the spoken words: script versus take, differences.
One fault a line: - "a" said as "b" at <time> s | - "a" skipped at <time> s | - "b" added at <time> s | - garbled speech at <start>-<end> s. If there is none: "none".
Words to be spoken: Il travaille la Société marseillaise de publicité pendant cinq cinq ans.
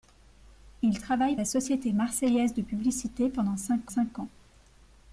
none